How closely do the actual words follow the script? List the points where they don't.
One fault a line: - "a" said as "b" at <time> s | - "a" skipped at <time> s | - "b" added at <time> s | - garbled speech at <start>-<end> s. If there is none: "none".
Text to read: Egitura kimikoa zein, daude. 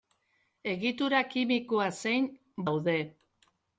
none